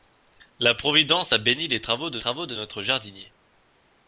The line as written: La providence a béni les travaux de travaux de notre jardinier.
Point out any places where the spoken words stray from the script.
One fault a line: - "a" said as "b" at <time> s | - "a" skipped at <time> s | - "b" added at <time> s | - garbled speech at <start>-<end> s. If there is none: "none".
none